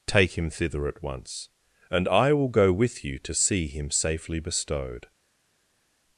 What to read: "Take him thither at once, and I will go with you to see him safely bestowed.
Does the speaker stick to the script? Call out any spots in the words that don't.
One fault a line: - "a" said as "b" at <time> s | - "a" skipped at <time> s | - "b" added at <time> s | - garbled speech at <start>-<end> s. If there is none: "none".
none